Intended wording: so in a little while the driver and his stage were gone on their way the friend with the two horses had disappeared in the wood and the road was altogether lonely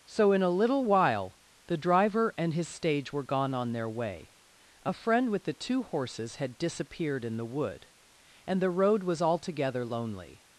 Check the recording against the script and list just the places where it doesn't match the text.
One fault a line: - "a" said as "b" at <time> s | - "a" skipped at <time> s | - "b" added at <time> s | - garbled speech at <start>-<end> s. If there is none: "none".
- "the" said as "a" at 4.8 s